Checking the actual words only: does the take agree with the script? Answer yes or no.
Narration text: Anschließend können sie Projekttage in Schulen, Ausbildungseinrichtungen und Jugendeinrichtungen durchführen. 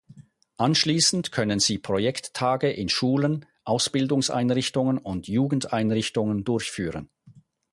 yes